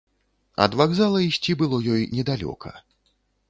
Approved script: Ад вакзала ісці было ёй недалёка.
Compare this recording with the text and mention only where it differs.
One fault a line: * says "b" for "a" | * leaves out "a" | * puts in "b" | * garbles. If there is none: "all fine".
all fine